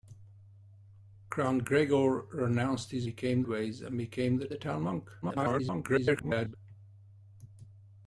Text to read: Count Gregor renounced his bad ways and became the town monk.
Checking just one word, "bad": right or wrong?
wrong